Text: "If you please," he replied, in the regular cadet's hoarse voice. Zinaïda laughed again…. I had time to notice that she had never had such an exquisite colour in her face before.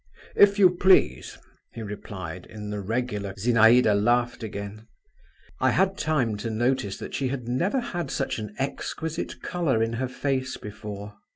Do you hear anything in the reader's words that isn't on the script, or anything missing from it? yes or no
yes